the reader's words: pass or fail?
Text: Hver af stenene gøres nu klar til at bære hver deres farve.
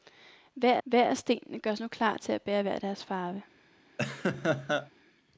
fail